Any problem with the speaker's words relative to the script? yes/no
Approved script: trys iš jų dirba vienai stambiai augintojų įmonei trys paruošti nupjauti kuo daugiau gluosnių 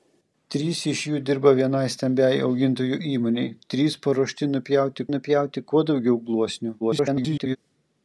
yes